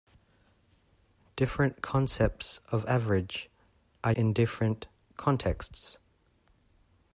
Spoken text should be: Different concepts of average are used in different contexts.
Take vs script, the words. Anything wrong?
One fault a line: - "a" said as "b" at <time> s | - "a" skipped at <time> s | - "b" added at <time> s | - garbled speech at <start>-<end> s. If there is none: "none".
- "used" skipped at 4.1 s